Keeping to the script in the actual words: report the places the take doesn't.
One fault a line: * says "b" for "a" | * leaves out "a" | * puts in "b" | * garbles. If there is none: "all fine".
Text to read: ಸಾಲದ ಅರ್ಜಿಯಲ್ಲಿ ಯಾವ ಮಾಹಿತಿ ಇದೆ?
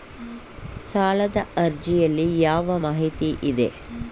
all fine